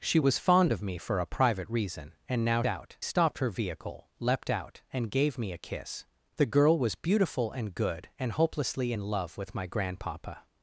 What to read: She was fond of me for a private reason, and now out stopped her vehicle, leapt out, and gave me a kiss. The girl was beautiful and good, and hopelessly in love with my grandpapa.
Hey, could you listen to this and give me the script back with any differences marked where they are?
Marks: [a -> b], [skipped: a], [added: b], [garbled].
She was fond of me for a private reason, and now out stopped her vehicle, leapt out, and gave me a kiss. The girl was beautiful and good, and hopelessly in love with my grandpapa.